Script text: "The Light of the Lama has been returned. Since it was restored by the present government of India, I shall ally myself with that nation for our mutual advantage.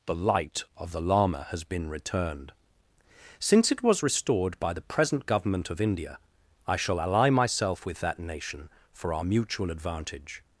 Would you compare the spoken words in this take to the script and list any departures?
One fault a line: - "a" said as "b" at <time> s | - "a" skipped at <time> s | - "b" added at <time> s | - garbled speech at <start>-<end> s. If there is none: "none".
none